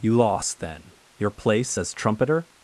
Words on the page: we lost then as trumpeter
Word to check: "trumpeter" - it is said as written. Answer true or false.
true